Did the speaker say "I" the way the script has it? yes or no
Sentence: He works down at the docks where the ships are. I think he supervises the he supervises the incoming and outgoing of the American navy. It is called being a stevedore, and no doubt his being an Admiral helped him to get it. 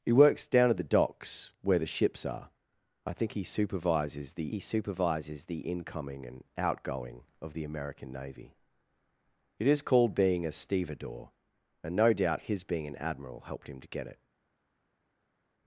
yes